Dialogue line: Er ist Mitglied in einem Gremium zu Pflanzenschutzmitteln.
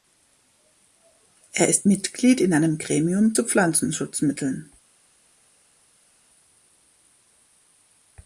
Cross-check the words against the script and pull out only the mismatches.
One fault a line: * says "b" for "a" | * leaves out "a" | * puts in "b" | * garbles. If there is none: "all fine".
all fine